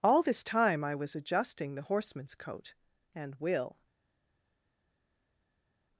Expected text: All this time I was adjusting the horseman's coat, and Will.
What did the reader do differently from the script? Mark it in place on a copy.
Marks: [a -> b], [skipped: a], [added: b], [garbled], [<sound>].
All this time I was adjusting the horseman's coat, and Will.